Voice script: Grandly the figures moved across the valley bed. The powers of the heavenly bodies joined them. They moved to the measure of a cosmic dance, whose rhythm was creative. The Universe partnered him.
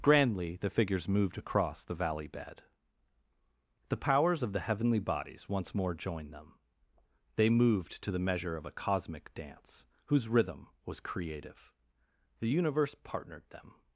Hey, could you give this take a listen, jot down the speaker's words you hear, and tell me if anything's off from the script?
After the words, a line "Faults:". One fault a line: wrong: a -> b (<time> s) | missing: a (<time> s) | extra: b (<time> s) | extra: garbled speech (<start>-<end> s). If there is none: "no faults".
Grandly the figures moved across the valley bed. The powers of the heavenly bodies once more joined them. They moved to the measure of a cosmic dance, whose rhythm was creative. The Universe partnered them.
Faults:
extra: once more (5.5 s)
wrong: him -> them (13.5 s)